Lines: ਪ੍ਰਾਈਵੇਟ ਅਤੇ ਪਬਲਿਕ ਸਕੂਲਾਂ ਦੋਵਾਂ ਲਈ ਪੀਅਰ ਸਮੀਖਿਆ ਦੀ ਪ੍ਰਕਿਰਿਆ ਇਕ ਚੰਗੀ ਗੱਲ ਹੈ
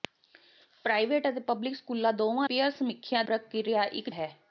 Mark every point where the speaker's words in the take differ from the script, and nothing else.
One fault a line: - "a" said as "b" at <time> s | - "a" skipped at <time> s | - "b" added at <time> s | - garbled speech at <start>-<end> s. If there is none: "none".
- "ਲਈ" skipped at 2.5 s
- "ਦੀ" skipped at 3.2 s
- "ਚੰਗੀ ਗੱਲ" skipped at 4.1 s